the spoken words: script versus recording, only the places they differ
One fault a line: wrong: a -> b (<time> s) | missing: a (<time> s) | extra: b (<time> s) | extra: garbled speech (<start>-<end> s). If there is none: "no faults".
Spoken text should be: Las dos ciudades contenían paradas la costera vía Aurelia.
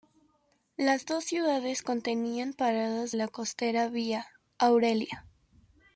no faults